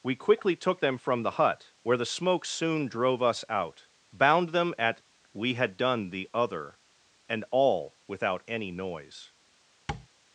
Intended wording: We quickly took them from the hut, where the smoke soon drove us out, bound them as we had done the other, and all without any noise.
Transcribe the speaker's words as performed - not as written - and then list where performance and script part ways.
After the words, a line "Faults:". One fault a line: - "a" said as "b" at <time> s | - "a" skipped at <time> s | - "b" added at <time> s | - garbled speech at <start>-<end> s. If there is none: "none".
We quickly took them from the hut, where the smoke soon drove us out, bound them at we had done the other, and all without any noise.
Faults:
- "as" said as "at" at 4.8 s